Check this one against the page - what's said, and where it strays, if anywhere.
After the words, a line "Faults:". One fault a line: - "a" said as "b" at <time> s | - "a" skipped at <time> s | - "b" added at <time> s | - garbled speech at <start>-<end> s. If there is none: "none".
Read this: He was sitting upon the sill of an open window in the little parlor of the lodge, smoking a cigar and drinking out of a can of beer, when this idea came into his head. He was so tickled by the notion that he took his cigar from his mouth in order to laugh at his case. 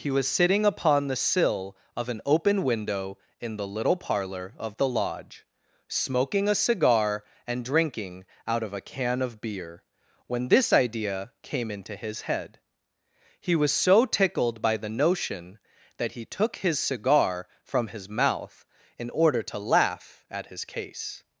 He was sitting upon the sill of an open window in the little parlor of the lodge, smoking a cigar and drinking out of a can of beer, when this idea came into his head. He was so tickled by the notion that he took his cigar from his mouth in order to laugh at his case.
Faults:
none